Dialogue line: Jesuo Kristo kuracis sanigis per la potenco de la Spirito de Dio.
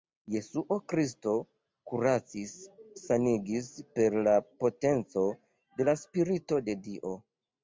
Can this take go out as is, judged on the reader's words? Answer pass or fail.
pass